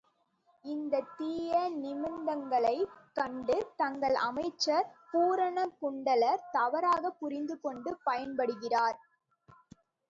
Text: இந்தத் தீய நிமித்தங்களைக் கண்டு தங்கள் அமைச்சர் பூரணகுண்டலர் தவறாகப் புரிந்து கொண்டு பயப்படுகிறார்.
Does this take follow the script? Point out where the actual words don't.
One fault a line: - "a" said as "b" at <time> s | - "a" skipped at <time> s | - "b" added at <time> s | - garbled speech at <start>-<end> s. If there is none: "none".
none